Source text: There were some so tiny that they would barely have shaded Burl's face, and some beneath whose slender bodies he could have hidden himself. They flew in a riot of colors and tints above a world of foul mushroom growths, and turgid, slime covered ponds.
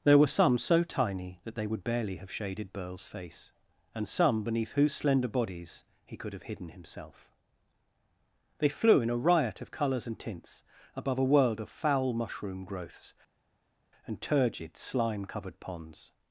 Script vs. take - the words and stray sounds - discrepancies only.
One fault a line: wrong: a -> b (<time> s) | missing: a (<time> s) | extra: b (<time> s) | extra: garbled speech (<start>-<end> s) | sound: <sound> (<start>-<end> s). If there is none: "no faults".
no faults